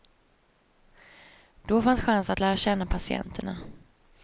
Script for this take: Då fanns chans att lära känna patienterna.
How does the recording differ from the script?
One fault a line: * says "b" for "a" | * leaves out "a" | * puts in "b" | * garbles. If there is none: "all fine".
all fine